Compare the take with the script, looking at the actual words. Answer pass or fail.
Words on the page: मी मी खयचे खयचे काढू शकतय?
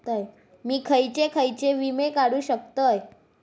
fail